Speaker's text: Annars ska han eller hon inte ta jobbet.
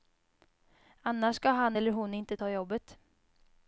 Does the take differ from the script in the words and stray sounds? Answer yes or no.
no